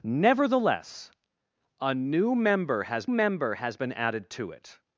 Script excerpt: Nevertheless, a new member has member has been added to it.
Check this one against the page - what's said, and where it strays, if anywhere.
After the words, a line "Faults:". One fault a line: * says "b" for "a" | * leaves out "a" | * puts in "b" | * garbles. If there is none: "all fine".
Nevertheless, a new member has member has been added to it.
Faults:
all fine